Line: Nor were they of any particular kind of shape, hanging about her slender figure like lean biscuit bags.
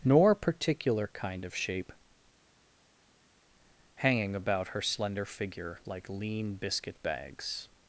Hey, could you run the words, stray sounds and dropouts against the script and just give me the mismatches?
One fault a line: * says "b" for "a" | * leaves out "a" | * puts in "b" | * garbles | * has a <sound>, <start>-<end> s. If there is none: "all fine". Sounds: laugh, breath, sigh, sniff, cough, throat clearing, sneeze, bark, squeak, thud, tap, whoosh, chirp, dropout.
* leaves out "were they of any"